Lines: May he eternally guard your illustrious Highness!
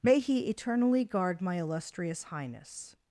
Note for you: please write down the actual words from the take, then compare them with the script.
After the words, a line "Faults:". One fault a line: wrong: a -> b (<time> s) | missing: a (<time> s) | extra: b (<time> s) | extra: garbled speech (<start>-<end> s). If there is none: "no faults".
May he eternally guard my illustrious Highness!
Faults:
wrong: your -> my (1.4 s)